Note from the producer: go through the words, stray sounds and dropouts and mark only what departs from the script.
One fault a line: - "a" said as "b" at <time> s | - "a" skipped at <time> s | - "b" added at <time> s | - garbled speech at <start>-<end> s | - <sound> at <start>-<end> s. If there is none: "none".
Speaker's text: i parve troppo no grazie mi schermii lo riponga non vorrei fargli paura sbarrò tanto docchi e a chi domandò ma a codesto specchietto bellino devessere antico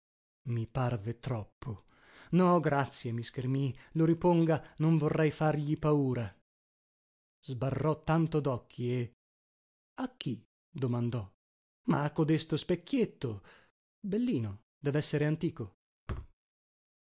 - thud at 16.1-16.3 s